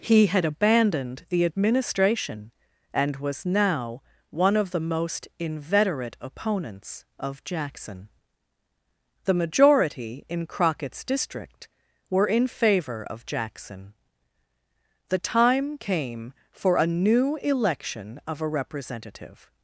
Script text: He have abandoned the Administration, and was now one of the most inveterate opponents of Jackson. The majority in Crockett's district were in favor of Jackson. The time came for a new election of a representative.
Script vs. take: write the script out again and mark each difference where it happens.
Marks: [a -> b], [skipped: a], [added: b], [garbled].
He [have -> had] abandoned the Administration, and was now one of the most inveterate opponents of Jackson. The majority in Crockett's district were in favor of Jackson. The time came for a new election of a representative.